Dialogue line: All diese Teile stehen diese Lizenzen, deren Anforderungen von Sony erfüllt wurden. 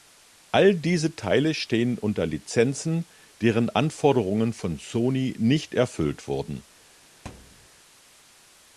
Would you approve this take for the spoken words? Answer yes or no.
no